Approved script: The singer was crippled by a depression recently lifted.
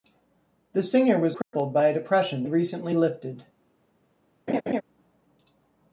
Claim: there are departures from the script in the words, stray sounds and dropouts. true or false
true